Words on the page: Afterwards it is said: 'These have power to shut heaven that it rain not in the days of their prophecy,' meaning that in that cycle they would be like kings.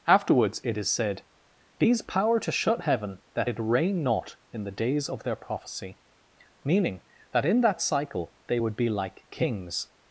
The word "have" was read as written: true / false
false